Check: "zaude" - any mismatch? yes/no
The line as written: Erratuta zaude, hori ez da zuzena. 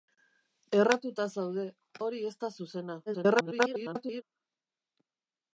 no